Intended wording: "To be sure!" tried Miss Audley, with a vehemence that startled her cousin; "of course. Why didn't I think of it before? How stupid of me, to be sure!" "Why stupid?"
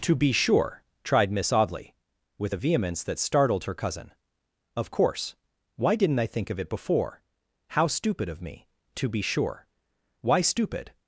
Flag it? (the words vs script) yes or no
no